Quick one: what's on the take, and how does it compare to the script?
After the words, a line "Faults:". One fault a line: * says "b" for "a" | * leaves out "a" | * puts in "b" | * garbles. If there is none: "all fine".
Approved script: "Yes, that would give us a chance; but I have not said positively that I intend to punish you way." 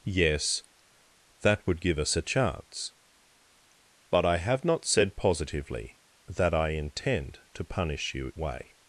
"Yes, that would give us a chance; but I have not said positively that I intend to punish you way."
Faults:
all fine